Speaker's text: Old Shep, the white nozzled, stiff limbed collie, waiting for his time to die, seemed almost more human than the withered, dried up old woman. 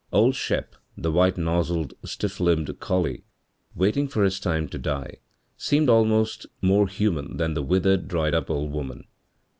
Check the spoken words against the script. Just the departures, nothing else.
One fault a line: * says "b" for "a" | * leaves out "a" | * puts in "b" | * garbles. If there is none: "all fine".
all fine